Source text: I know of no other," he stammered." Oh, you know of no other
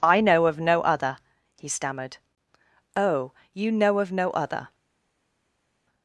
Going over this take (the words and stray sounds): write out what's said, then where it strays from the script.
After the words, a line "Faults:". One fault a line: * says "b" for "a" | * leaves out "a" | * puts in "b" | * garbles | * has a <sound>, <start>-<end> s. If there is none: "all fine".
I know of no other," he stammered." Oh, you know of no other
Faults:
all fine